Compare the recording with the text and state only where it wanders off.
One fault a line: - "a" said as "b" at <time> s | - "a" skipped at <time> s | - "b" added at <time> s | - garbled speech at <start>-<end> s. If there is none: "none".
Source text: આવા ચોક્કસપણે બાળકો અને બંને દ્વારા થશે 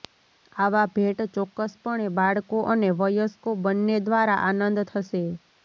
- "ભેટ" added at 0.9 s
- "વયસ્કો" added at 3.0 s
- "આનંદ" added at 4.5 s